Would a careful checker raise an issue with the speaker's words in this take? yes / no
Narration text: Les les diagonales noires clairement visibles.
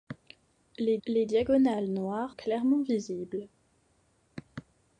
no